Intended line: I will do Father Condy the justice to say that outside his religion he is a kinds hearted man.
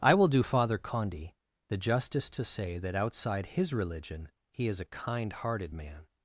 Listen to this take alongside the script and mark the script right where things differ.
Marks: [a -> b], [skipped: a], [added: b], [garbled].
I will do Father Condy the justice to say that outside his religion he is a [kinds -> kind] hearted man.